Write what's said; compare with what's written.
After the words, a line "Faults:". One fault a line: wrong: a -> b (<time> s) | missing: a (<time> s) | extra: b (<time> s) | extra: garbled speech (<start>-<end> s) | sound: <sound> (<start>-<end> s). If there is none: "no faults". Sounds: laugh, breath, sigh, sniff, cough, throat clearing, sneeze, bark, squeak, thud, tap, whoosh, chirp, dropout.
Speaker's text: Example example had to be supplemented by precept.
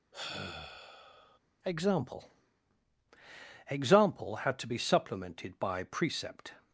Example example had to be supplemented by precept.
Faults:
sound: sigh (0.1-1.4 s)